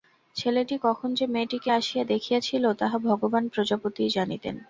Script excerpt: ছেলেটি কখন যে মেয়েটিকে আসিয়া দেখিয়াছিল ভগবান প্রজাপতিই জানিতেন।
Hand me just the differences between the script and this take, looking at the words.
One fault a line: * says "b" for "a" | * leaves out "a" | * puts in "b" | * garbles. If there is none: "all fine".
* puts in "তাহা"